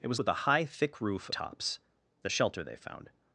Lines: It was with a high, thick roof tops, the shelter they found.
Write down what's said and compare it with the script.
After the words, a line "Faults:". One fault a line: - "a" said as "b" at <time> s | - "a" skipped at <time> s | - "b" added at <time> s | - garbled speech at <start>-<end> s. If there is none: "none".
It was with a high, thick roof tops, the shelter they found.
Faults:
none